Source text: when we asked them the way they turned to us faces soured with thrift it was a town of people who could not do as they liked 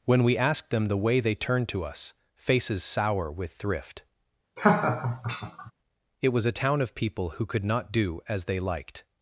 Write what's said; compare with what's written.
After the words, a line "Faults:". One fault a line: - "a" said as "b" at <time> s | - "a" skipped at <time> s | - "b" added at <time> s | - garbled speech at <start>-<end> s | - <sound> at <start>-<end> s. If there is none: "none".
when we asked them the way they turned to us faces sour with thrift it was a town of people who could not do as they liked
Faults:
- "soured" said as "sour" at 2.8 s
- laugh at 4.6-5.7 s